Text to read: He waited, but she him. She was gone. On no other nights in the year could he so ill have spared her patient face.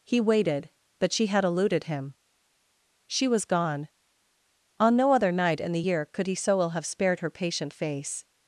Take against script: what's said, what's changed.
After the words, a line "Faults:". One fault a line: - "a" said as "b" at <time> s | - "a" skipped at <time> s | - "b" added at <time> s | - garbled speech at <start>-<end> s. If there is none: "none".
He waited, but she had eluded him. She was gone. On no other night in the year could he so ill have spared her patient face.
Faults:
- "had eluded" added at 1.3 s
- "nights" said as "night" at 5.3 s